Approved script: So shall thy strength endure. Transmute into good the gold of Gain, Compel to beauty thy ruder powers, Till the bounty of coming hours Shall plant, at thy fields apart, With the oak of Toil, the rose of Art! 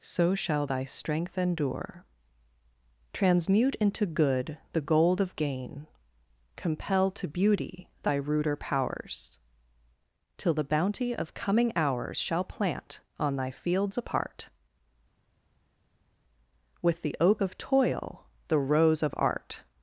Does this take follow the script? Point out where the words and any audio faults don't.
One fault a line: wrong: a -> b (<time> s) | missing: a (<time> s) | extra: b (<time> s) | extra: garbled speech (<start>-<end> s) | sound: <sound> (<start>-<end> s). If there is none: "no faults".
wrong: at -> on (13.2 s)